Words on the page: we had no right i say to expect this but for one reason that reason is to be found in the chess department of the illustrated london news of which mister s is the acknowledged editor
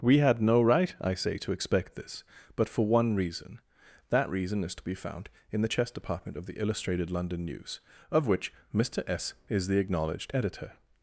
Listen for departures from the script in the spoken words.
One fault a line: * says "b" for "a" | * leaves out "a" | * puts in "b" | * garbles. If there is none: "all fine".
all fine